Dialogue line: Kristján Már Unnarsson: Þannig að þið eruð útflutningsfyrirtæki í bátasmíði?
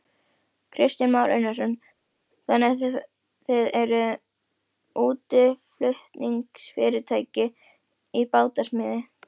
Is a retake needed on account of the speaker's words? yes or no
no